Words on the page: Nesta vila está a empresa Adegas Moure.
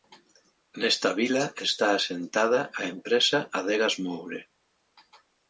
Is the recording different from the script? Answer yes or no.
yes